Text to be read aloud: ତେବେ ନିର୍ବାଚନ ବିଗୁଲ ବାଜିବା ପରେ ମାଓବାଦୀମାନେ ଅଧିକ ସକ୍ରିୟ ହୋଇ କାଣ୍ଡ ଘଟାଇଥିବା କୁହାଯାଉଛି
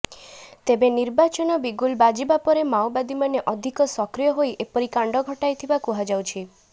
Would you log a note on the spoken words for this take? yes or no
yes